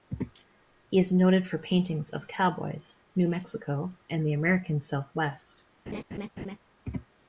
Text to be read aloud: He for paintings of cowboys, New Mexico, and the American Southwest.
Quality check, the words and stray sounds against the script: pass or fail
fail